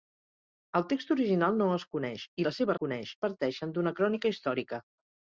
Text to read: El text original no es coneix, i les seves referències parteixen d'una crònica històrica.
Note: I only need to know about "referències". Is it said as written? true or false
false